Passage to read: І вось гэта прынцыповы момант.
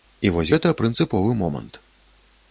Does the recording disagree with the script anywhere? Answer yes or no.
no